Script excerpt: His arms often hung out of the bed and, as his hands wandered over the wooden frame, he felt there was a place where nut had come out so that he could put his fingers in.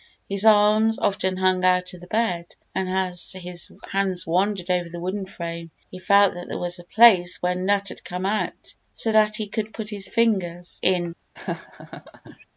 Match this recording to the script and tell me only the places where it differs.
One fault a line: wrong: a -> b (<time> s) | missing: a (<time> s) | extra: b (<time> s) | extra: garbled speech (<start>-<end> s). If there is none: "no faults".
extra: that (6.3 s)